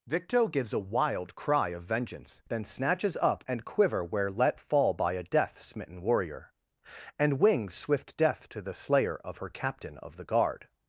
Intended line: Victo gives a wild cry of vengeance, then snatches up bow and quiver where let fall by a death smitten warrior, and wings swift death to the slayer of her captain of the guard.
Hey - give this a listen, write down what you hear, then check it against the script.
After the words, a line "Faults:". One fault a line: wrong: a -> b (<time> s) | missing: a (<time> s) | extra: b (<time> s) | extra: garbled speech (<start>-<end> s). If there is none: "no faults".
Victo gives a wild cry of vengeance, then snatches up and quiver where let fall by a death smitten warrior, and wings swift death to the slayer of her captain of the guard.
Faults:
missing: bow (3.4 s)